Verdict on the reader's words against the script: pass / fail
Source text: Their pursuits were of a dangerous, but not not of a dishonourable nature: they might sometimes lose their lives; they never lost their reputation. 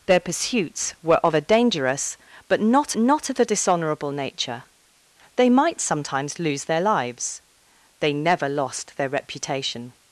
pass